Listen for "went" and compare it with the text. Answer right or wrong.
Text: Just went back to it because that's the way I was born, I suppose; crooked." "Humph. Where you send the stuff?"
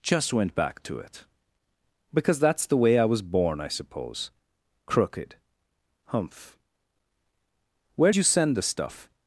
right